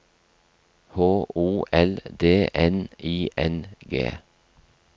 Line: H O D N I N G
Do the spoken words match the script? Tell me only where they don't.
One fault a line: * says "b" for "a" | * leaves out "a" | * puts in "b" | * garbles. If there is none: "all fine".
* puts in "L"